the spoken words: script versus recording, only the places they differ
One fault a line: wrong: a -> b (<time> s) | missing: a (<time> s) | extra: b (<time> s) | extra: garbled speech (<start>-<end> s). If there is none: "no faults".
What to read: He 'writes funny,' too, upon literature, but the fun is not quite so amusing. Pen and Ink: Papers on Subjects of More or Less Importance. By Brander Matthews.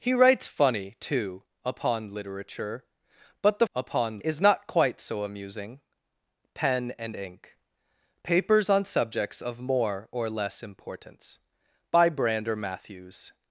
wrong: fun -> upon (3.7 s)